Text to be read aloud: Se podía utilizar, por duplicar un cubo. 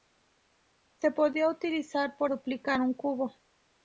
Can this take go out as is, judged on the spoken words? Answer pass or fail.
pass